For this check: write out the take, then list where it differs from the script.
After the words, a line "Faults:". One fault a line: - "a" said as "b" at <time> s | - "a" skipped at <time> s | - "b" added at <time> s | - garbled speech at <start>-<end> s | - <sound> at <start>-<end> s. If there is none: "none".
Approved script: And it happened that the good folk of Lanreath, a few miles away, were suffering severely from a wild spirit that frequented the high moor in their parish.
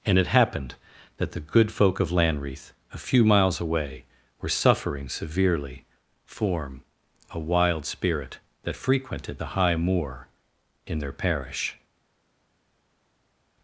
And it happened that the good folk of Lanreath, a few miles away, were suffering severely form a wild spirit that frequented the high moor in their parish.
Faults:
- "from" said as "form" at 6.2 s